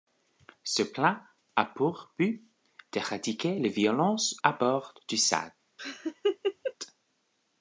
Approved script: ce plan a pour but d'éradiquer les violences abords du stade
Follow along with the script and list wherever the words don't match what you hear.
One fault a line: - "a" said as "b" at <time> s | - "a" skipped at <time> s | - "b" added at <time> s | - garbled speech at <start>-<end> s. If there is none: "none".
none